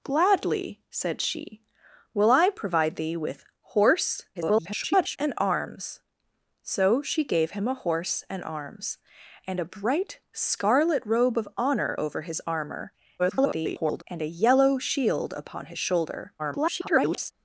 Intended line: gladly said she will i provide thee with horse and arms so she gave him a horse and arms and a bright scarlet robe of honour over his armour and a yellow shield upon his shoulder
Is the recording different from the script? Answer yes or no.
yes